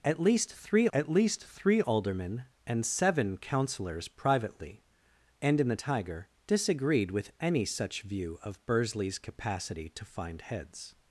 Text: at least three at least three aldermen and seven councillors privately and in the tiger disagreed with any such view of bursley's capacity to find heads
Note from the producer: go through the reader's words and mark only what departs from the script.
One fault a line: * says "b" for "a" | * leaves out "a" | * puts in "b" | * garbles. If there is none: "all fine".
all fine